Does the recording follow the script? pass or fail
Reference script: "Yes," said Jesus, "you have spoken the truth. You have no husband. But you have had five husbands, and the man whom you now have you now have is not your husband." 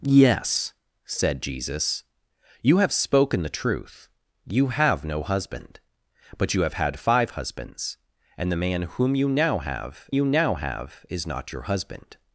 pass